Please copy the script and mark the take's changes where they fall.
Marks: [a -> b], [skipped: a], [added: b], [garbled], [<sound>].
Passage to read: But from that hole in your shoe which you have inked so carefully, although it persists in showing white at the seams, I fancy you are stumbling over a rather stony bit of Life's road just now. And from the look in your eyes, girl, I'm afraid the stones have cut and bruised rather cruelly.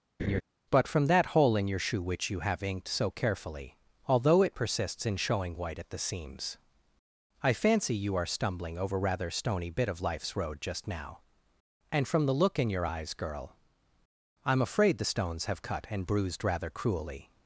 [laugh] But from that hole in your shoe which you have inked so carefully, although it persists in showing white at the seams, I fancy you are stumbling over [skipped: a] rather stony bit of Life's road just now. And from the look in your eyes, girl, I'm afraid the stones have cut and bruised rather cruelly.